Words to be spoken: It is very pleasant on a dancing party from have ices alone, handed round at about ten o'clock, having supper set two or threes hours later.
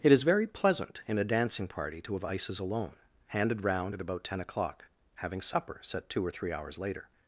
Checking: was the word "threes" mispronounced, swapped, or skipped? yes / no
yes